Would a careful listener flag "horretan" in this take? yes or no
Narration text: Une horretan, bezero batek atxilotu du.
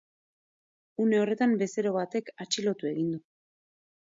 no